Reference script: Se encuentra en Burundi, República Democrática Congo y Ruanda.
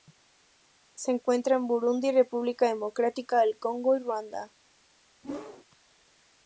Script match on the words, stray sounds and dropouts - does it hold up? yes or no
no